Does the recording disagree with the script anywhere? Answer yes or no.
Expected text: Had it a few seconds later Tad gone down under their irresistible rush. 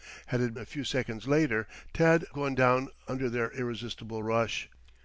no